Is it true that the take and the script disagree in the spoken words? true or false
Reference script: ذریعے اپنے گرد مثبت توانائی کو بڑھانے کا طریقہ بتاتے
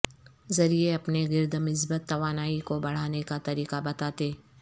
false